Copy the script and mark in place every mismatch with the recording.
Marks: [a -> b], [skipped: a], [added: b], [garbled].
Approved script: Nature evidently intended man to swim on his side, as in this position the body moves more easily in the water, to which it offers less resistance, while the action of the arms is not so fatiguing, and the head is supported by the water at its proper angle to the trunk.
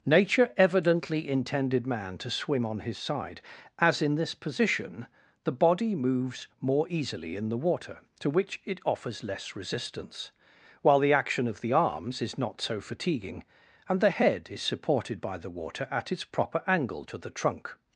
Nature evidently intended man to swim on his side, as in this position the body moves more easily in the water, to which it offers less resistance, while the action of the arms is not so fatiguing, and the head is supported by the water at its proper angle to the trunk.